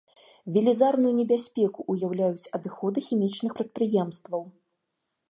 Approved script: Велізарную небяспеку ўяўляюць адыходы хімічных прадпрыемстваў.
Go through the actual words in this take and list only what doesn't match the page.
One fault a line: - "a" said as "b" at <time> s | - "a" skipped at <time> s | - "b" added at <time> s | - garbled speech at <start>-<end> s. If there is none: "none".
none